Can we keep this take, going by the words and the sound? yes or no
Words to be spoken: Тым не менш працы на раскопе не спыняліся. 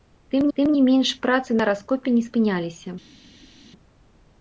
no